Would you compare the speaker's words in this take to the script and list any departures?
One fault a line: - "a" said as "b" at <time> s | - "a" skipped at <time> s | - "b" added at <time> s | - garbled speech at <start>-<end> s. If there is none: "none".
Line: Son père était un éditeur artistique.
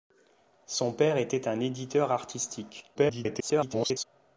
- garbled speech at 2.9-4.0 s